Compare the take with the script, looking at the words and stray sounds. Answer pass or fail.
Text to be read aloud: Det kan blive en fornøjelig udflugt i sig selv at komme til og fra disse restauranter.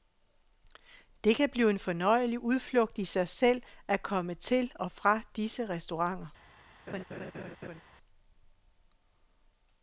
fail